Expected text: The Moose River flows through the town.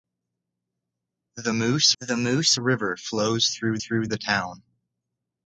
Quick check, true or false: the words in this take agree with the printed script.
false